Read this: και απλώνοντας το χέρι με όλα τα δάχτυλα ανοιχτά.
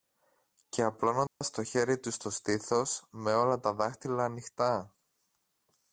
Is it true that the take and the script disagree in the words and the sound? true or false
true